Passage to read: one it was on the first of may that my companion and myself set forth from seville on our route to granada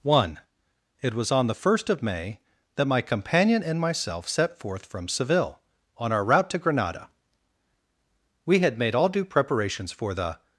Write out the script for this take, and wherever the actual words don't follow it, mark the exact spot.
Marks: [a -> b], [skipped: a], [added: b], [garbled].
one it was on the first of may that my companion and myself set forth from seville on our route to granada [added: we had made all due preparations for the]